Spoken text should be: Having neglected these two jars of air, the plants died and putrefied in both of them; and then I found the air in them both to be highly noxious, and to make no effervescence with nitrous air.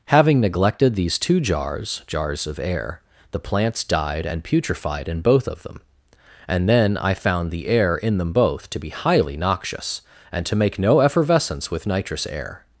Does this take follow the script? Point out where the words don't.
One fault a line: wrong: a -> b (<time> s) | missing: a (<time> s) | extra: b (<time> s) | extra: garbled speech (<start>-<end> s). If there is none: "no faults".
extra: jars (2.1 s)